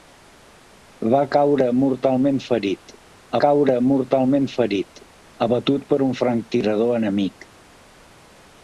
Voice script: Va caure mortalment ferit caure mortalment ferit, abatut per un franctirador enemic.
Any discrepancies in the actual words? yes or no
no